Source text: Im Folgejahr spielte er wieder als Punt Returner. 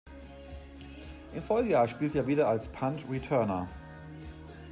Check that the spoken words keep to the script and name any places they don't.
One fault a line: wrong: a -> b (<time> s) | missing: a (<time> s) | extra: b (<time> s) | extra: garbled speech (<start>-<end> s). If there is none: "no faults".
no faults